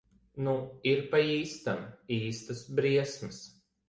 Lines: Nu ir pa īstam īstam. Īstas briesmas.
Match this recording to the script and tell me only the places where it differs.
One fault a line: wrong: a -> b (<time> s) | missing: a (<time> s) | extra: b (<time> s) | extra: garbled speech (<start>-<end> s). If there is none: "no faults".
missing: īstam (1.8 s)